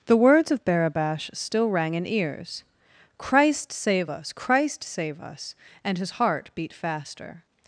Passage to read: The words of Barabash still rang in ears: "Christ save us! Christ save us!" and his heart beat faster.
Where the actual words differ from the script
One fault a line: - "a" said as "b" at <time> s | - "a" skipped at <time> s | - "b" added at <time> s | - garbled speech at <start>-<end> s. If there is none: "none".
none